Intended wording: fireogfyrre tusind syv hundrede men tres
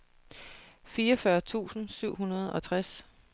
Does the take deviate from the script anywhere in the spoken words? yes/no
yes